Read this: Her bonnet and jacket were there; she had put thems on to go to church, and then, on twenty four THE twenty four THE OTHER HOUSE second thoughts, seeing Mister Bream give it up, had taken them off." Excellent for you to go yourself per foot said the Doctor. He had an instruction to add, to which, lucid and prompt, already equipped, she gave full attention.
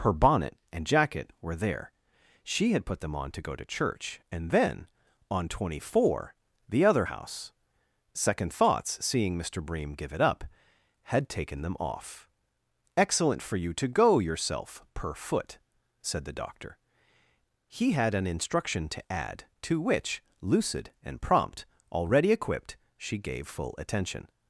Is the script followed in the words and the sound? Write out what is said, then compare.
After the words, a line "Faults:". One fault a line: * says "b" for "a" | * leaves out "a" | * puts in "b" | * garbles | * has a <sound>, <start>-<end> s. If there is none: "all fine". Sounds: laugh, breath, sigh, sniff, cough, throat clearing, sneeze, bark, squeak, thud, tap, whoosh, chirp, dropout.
Her bonnet and jacket were there; she had put them on to go to church, and then, on twenty four THE OTHER HOUSE second thoughts, seeing Mister Bream give it up, had taken them off." Excellent for you to go yourself per foot said the Doctor. He had an instruction to add, to which, lucid and prompt, already equipped, she gave full attention.
Faults:
* says "them" for "thems"
* leaves out "twenty four THE"